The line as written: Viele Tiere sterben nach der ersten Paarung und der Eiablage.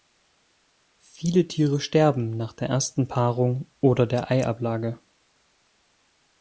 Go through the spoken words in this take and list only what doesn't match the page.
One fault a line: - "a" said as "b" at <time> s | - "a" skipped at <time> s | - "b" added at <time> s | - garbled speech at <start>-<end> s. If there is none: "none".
- "und" said as "oder" at 3.8 s